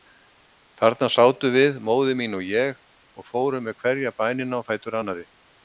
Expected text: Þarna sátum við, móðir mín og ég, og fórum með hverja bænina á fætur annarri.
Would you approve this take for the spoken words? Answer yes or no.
yes